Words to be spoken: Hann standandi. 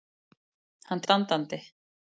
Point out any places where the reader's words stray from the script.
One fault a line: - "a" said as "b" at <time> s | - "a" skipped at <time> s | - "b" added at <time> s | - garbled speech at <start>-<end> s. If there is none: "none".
none